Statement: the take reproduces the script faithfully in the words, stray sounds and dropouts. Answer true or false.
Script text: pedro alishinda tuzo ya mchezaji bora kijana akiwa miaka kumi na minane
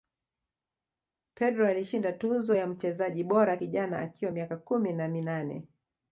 true